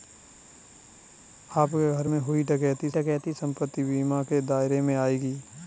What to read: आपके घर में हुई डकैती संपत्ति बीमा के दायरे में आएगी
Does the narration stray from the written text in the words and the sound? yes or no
yes